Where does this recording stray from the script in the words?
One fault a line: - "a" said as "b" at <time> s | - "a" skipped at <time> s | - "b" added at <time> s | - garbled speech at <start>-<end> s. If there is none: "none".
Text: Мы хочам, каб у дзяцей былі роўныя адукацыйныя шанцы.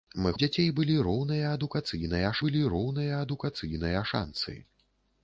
- "хочам каб у дзяцей" said as "у дзяцей былі роўныя адукацыйныя" at 0.3 s